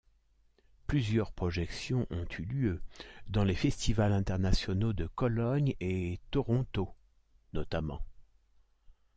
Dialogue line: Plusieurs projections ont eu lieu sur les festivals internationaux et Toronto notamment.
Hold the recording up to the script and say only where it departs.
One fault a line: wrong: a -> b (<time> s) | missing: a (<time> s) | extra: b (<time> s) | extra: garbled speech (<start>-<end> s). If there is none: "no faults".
wrong: sur -> dans (3.3 s)
extra: de Cologne (4.9 s)